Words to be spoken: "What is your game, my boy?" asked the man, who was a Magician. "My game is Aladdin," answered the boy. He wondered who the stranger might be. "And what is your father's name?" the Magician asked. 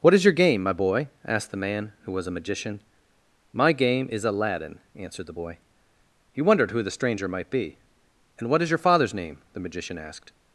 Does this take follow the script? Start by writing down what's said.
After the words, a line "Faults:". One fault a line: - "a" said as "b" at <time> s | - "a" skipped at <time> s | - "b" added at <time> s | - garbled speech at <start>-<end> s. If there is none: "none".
"What is your game, my boy?" asked the man, who was a Magician. "My game is Aladdin," answered the boy. He wondered who the stranger might be. "And what is your father's name?" the Magician asked.
Faults:
none